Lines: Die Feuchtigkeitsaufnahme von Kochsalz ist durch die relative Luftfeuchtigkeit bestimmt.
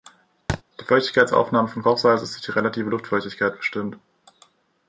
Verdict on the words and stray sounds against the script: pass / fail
fail